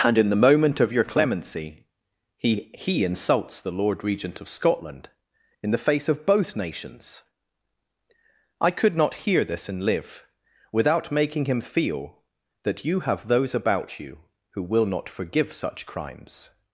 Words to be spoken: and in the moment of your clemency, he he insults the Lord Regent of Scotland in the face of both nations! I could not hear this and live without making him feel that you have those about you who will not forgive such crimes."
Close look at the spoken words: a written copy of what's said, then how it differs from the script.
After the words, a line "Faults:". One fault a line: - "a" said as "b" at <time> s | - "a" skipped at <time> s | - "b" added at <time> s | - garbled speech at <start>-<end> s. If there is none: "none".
and in the moment of your clemency, he he insults the Lord Regent of Scotland in the face of both nations! I could not hear this and live without making him feel that you have those about you who will not forgive such crimes."
Faults:
none